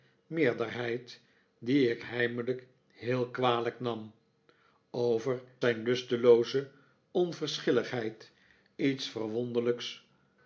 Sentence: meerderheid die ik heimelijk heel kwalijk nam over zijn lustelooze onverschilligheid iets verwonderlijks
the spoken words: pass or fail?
pass